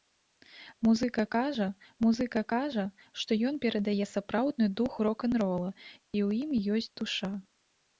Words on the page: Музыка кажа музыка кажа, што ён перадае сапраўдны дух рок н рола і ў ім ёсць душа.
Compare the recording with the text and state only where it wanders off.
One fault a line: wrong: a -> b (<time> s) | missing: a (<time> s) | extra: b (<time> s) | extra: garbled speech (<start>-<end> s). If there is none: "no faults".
no faults